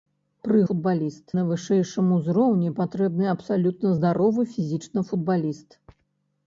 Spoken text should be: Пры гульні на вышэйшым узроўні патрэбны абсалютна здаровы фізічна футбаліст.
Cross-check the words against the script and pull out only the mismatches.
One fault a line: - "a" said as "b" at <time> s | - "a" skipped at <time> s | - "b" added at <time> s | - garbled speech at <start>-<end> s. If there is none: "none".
- "гульні" said as "футбаліст" at 0.7 s